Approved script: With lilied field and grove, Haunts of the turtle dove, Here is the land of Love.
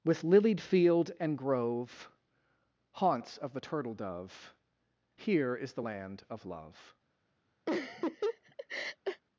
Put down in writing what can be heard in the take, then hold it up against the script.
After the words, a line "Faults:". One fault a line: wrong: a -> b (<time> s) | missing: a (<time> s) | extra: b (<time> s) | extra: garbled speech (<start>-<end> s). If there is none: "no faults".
With lilied field and grove, Haunts of the turtle dove, Here is the land of Love.
Faults:
no faults